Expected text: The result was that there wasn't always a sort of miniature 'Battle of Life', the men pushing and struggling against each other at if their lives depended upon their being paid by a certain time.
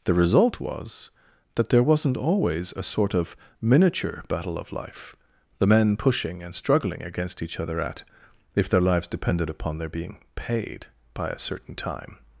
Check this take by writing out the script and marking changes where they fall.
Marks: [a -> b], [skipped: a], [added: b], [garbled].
The result was that there wasn't always a sort of miniature 'Battle of Life', the men pushing and struggling against each other at if their lives depended upon their being paid by a certain time.